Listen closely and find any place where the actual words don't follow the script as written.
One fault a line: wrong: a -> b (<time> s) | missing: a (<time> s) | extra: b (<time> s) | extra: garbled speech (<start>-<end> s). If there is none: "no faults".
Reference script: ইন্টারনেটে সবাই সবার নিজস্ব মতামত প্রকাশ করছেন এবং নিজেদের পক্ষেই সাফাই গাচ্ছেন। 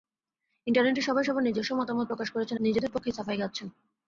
missing: এবং (2.6 s)